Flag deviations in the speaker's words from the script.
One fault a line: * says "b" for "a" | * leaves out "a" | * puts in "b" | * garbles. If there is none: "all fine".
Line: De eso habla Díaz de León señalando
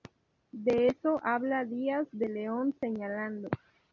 all fine